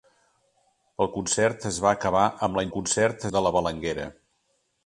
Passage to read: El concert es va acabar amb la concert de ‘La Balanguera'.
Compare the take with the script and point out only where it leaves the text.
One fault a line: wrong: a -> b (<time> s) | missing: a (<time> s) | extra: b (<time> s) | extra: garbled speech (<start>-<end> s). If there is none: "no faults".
no faults